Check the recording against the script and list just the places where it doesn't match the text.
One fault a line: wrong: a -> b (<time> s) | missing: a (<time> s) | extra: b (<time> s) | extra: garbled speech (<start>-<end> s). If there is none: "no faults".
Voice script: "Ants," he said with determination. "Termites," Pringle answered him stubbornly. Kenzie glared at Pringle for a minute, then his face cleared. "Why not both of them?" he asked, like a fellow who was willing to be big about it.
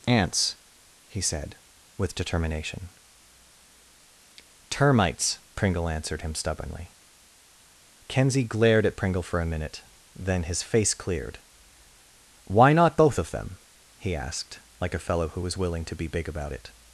no faults